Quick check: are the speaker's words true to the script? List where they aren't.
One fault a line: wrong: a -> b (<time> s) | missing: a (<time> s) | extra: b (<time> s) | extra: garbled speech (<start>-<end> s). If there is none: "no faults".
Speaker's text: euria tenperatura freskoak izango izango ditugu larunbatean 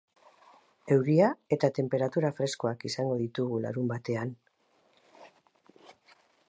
extra: eta (1.6 s)
missing: izango (3.2 s)